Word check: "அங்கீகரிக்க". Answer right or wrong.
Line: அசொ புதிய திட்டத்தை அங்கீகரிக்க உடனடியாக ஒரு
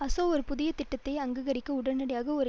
right